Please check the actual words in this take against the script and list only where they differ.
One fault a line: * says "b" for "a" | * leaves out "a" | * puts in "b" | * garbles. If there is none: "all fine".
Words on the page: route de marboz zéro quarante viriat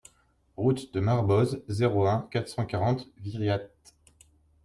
* puts in "un quatre cent"